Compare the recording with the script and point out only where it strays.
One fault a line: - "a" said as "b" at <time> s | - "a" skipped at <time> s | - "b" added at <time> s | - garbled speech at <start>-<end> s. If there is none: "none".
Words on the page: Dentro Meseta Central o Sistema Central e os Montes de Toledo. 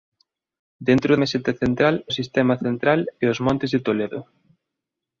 none